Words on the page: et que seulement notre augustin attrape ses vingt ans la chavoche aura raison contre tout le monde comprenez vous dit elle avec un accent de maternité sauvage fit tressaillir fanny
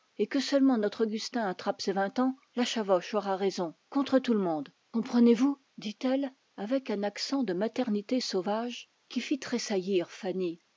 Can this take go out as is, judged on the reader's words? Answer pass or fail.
fail